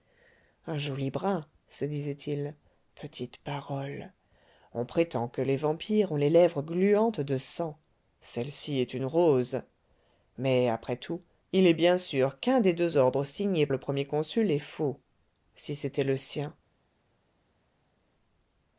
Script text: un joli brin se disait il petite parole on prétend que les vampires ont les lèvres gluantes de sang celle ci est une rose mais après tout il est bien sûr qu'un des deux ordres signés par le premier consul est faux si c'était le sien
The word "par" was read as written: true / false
false